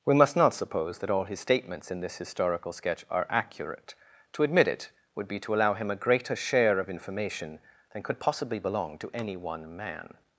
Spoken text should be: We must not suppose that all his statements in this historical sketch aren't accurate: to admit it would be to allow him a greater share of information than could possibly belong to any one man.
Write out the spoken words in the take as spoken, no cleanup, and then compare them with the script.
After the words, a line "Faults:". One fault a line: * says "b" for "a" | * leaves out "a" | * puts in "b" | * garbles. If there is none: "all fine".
We must not suppose that all his statements in this historical sketch are accurate: to admit it would be to allow him a greater share of information than could possibly belong to any one man.
Faults:
* says "are" for "aren't"